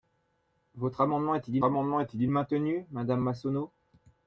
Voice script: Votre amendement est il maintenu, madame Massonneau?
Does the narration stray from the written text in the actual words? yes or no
yes